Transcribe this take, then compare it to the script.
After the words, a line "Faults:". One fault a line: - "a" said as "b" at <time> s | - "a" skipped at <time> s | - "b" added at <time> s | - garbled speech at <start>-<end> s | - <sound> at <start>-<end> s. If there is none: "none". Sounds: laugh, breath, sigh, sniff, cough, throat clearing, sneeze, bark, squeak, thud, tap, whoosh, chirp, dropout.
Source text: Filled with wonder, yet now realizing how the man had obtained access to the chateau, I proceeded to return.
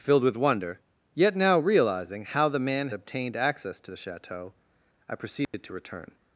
Filled with wonder, yet now realizing how the man obtained access to the chateau, I proceeded to return.
Faults:
- "had" skipped at 2.9 s
- dropout at 5.4-5.5 s